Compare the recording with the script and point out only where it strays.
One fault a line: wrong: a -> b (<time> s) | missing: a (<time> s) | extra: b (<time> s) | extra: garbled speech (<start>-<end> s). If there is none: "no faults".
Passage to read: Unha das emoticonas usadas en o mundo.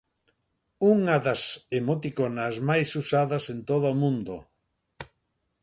extra: máis (2.7 s)
extra: todo (3.7 s)